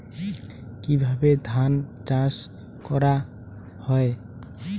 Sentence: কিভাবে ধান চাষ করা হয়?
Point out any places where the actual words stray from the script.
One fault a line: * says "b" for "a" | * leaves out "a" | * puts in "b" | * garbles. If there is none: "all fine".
all fine